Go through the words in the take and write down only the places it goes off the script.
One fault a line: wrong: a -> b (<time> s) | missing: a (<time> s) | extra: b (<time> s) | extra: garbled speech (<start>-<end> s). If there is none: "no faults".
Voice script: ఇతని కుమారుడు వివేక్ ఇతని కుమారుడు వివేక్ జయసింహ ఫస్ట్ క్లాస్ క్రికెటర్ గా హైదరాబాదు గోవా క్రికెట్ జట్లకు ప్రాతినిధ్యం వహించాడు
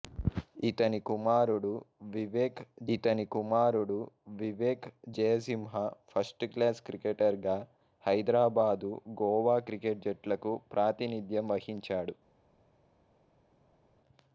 no faults